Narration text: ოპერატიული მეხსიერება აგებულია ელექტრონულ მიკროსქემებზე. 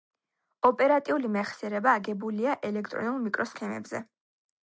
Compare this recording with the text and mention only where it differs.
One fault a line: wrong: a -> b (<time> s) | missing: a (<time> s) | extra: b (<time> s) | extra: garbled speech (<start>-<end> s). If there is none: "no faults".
no faults